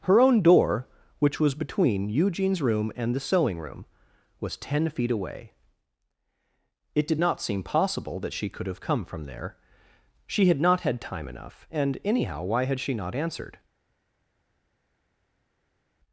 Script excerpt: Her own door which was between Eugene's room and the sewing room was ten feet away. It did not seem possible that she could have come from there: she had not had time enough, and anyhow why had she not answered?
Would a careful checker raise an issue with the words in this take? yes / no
no